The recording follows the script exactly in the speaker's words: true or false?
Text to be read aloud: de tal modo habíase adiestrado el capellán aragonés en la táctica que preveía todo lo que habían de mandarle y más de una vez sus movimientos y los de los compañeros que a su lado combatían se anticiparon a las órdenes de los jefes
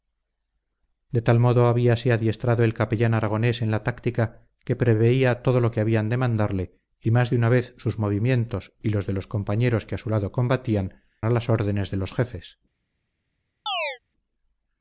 false